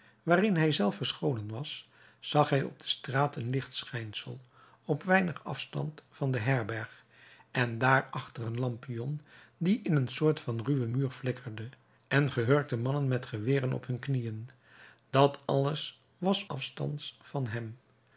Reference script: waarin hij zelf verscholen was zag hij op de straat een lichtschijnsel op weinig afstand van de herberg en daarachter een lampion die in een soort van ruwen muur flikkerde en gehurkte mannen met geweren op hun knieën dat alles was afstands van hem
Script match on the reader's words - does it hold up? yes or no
yes